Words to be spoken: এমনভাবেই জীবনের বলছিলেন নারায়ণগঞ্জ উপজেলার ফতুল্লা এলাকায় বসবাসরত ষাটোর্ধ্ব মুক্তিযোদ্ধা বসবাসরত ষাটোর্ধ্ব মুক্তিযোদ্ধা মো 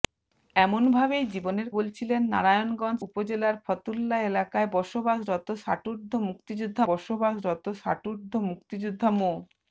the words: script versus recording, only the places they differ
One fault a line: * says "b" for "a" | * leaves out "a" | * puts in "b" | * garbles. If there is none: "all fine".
all fine